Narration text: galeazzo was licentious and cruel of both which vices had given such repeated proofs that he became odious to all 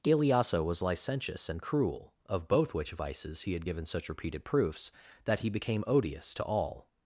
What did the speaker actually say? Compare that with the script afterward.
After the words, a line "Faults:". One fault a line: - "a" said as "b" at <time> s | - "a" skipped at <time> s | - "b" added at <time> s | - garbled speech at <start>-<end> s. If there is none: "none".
galeazzo was licentious and cruel of both which vices he had given such repeated proofs that he became odious to all
Faults:
- "he" added at 3.4 s